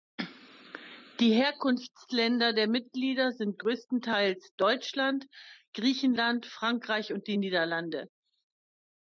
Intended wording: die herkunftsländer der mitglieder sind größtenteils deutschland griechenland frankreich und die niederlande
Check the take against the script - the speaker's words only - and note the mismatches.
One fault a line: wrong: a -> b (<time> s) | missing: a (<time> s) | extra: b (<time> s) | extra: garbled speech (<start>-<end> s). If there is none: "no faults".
no faults